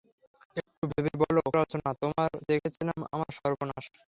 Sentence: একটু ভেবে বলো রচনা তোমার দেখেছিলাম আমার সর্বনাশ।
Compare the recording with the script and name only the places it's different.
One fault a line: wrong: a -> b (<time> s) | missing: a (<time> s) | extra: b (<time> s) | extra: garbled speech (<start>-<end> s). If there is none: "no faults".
no faults